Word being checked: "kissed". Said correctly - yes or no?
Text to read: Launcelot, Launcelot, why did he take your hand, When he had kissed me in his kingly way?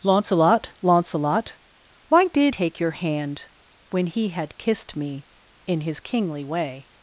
yes